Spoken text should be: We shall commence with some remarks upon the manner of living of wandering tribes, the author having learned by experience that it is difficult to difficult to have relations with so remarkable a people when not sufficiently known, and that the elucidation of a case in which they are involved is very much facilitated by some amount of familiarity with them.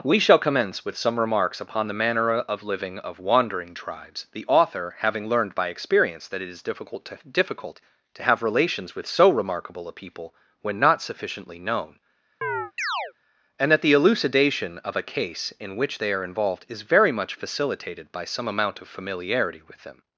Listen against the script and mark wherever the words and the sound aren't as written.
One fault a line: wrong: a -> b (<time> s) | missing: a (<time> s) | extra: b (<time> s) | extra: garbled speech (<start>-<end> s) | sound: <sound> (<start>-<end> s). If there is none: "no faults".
sound: chirp (12.4-13.1 s)